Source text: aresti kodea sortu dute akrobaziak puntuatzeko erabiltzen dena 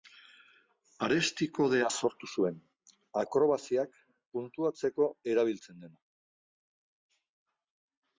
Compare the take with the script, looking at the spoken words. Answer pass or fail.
fail